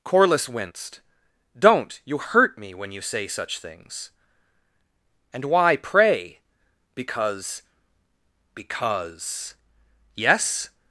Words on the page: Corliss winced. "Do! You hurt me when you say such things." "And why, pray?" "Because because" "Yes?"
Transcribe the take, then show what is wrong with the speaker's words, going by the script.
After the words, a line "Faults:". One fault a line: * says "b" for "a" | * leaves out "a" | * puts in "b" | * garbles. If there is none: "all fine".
Corliss winced. "Don't! You hurt me when you say such things." "And why, pray?" "Because because" "Yes?"
Faults:
* says "Don't" for "Do"